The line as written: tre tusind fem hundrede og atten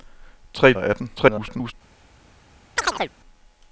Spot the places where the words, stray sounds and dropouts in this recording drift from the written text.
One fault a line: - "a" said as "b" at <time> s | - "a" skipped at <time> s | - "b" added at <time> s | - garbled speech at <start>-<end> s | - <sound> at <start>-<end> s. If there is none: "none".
- "tusind fem hundrede" skipped at 0.7 s
- garbled speech at 1.1-1.7 s
- chirp at 2.8-3.1 s